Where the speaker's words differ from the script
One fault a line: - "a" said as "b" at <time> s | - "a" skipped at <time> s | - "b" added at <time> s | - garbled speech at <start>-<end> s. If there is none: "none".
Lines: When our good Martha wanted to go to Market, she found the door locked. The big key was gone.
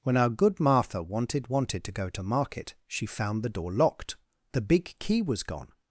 - "wanted" added at 1.5 s